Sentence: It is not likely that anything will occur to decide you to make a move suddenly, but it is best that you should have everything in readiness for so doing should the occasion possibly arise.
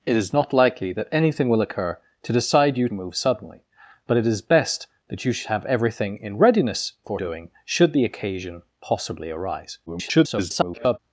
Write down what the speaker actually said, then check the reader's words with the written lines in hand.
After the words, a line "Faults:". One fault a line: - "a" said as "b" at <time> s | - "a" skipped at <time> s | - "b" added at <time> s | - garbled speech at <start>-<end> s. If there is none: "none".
It is not likely that anything will occur to decide you a move suddenly, but it is best that you should have everything in readiness for doing should the occasion possibly arise. [garbled]
Faults:
- "to make" skipped at 2.9 s
- "so" skipped at 7.2 s
- garbled speech at 9.9-11.0 s